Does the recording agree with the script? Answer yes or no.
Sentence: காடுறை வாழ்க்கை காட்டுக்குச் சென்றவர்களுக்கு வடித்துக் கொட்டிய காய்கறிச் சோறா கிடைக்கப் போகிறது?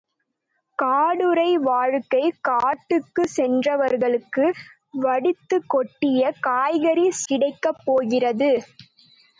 no